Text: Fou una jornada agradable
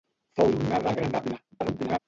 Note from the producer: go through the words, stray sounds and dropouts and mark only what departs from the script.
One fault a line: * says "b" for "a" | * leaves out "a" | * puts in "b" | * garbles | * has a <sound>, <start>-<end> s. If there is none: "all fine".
* leaves out "una"
* garbles